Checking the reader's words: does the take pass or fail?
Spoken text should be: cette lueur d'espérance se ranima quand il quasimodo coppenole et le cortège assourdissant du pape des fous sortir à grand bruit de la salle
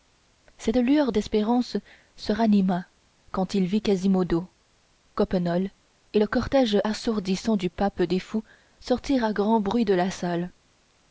fail